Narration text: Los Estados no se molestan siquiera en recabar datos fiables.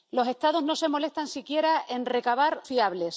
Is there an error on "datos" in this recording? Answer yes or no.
yes